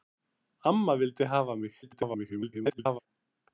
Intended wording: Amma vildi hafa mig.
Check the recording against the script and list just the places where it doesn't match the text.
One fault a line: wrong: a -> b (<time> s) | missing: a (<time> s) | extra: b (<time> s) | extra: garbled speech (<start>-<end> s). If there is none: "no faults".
extra: garbled speech (1.8-3.0 s)